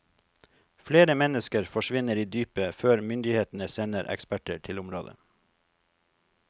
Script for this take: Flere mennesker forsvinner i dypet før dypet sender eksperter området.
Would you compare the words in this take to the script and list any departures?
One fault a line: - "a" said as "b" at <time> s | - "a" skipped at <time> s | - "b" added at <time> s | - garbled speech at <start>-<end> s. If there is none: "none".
- "dypet" said as "myndighetene" at 3.1 s
- "til" added at 4.6 s